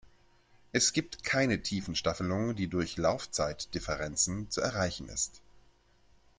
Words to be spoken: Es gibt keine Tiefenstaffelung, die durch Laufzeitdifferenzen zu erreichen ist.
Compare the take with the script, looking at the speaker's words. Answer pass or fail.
pass